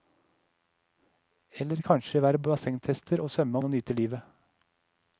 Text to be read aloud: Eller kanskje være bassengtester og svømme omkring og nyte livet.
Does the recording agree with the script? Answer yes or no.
no